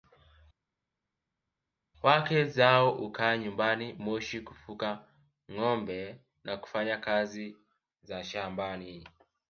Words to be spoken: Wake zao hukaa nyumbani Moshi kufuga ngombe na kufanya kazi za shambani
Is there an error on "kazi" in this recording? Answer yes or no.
no